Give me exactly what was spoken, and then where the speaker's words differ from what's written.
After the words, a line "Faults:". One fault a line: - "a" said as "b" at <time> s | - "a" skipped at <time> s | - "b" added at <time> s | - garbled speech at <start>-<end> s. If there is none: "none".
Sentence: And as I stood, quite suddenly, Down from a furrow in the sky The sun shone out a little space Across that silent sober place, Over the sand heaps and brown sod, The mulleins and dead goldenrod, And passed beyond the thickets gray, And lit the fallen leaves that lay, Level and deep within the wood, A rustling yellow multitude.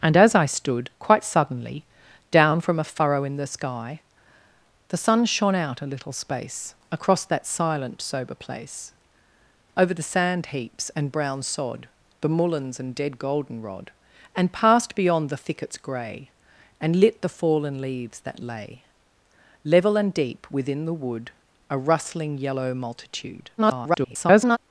And as I stood, quite suddenly, Down from a furrow in the sky The sun shone out a little space Across that silent sober place, Over the sand heaps and brown sod, The mulleins and dead goldenrod, And passed beyond the thickets gray, And lit the fallen leaves that lay, Level and deep within the wood, A rustling yellow multitude. [garbled]
Faults:
- garbled speech at 23.6-24.6 s